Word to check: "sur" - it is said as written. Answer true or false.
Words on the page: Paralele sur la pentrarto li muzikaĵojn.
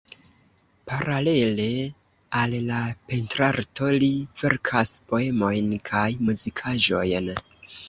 false